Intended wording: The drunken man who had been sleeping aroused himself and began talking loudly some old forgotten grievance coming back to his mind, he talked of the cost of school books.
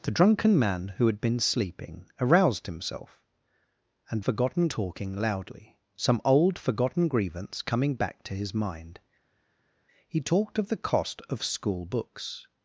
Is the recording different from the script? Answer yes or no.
yes